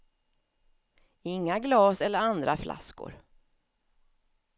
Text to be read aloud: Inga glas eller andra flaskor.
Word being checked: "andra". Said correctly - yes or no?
yes